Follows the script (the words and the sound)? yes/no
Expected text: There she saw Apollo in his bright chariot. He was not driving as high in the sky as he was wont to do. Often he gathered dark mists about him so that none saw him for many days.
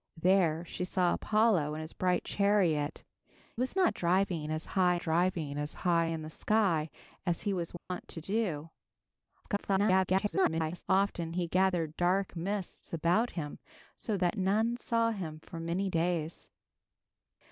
no